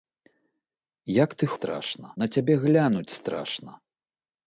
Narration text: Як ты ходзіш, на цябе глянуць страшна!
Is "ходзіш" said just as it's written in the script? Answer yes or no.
no